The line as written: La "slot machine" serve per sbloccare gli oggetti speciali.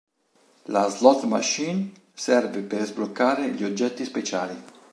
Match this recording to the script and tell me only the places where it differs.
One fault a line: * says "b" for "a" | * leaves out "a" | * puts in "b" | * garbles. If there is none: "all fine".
all fine